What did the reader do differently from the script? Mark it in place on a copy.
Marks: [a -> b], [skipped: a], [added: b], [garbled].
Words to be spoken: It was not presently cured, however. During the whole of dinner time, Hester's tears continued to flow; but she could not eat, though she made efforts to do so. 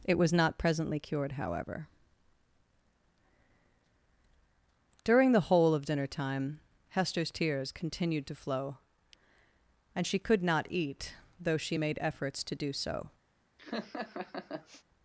It was not presently cured, however. During the whole of dinner time, Hester's tears continued to flow; [but -> and] she could not eat, though she made efforts to do so.